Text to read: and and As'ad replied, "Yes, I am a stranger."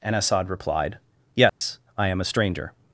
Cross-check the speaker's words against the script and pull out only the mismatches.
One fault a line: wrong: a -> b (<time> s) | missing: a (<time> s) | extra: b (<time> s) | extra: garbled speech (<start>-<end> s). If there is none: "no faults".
missing: and (0.1 s)